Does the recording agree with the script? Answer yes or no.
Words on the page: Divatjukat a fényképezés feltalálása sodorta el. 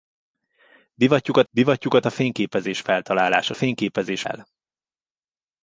no